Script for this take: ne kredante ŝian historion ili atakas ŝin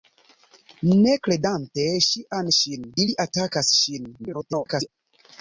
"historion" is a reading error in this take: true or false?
true